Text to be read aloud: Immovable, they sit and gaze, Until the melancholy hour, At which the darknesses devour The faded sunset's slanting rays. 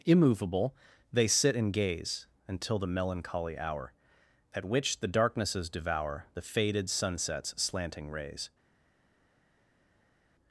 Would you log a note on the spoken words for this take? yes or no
no